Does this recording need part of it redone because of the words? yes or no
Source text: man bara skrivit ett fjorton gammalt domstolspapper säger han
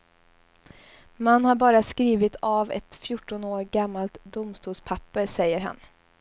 yes